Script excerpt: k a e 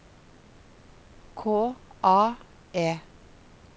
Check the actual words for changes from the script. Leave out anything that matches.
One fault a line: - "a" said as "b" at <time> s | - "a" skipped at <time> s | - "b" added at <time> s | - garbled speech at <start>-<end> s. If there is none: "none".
none